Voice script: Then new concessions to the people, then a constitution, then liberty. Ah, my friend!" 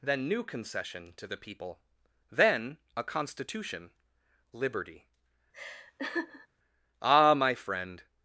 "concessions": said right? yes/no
no